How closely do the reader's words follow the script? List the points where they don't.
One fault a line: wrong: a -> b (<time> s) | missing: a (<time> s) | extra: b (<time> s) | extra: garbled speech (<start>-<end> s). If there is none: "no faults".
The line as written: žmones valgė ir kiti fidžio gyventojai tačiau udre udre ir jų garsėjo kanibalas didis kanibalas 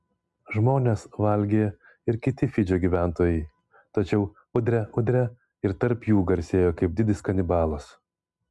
extra: tarp (5.8 s)
wrong: kanibalas -> kaip (6.8 s)